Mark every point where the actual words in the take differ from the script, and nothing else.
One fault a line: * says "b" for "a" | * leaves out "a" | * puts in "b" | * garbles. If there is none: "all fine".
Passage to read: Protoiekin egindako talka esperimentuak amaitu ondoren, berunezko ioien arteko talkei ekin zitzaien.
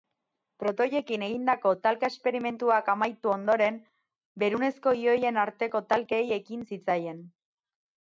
all fine